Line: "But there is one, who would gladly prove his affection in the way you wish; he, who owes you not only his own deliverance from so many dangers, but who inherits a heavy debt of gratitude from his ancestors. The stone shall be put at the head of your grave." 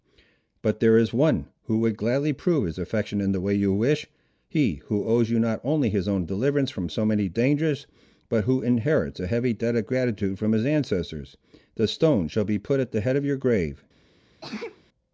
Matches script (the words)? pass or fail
pass